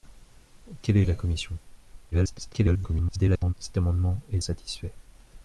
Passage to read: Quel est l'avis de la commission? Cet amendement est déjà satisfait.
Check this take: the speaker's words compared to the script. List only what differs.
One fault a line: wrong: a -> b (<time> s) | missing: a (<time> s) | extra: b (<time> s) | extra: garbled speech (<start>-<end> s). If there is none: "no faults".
missing: l'avis (1.1 s)
extra: garbled speech (2.1-3.5 s)
missing: déjà (4.4 s)